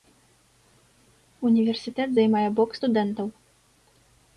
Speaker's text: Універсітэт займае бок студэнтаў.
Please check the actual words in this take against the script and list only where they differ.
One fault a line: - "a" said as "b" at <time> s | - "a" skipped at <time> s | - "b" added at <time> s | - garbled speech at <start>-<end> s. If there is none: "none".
none